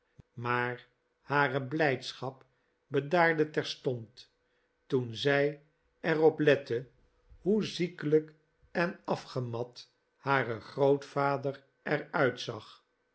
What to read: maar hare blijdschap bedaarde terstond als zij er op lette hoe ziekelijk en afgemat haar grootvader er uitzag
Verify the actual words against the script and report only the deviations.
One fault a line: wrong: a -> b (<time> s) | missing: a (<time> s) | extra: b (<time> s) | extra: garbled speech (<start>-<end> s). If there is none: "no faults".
wrong: als -> toen (4.9 s)